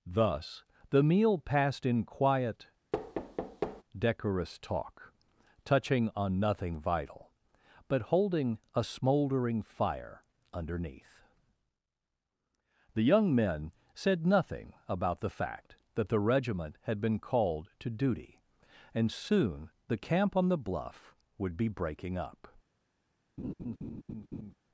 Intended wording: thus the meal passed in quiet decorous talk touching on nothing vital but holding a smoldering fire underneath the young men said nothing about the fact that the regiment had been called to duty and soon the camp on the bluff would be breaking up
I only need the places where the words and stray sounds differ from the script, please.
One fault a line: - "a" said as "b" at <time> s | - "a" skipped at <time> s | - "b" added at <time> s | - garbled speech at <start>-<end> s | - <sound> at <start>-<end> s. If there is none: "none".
- thud at 2.9-3.8 s
- laugh at 23.4-24.5 s